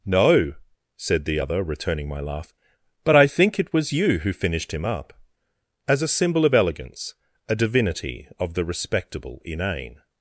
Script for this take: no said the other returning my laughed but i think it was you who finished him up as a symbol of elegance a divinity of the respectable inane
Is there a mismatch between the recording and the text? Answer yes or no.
yes